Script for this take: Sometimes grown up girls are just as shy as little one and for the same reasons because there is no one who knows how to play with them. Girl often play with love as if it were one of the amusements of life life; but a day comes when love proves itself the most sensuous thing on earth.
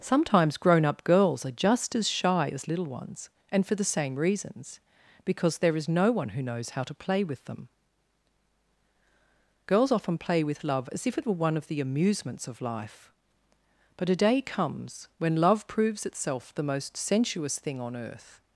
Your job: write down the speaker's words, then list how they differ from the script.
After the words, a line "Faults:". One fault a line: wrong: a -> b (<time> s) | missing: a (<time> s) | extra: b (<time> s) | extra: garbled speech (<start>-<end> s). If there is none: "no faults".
Sometimes grown up girls are just as shy as little ones and for the same reasons because there is no one who knows how to play with them. Girls often play with love as if it were one of the amusements of life; but a day comes when love proves itself the most sensuous thing on earth.
Faults:
wrong: one -> ones (2.9 s)
wrong: Girl -> Girls (9.7 s)
missing: life (13.1 s)